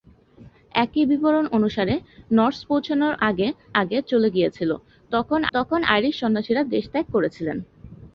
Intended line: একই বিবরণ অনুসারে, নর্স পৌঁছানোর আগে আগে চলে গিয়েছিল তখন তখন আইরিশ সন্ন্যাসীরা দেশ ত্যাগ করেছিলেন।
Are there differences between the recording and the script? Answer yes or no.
no